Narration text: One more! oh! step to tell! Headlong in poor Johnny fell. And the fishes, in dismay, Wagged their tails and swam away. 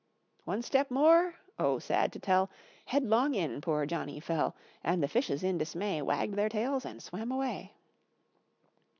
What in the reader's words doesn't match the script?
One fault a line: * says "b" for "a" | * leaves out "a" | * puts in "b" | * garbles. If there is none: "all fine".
* puts in "step"
* says "sad" for "step"